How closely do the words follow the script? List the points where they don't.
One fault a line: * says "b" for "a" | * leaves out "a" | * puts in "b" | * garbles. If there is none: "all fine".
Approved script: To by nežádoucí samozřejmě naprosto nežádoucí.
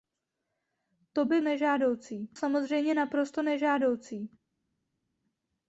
all fine